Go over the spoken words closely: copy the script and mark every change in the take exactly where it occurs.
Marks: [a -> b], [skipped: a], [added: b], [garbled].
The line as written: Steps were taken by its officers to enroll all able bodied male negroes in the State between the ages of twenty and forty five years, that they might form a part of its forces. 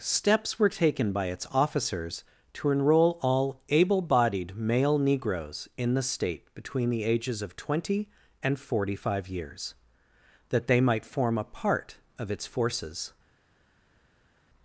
Steps were taken by its officers to enroll all able bodied male negroes in the State between the ages of twenty and forty five years, that they might form a part of its forces.